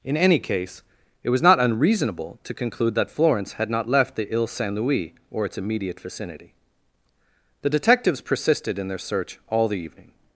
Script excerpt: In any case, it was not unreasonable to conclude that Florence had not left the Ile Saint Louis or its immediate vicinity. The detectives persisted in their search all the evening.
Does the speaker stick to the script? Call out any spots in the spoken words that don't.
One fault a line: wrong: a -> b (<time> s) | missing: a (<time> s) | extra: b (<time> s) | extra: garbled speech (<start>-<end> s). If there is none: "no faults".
no faults